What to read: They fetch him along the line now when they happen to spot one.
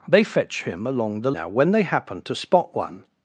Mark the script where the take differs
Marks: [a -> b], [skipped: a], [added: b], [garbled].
They fetch him along the [skipped: line] now when they happen to spot one.